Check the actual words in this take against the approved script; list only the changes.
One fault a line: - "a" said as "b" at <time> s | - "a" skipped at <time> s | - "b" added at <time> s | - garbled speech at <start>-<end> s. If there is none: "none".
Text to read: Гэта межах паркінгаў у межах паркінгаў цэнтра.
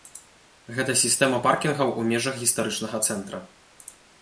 - "межах" said as "сістэма" at 1.0 s
- "паркінгаў" said as "гістарычнага" at 2.5 s